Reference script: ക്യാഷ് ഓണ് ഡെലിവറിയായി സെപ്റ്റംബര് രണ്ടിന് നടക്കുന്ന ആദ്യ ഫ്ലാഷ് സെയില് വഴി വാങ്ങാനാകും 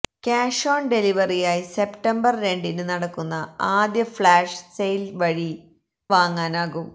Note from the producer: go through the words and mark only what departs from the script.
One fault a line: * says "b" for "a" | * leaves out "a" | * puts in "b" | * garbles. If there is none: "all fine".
all fine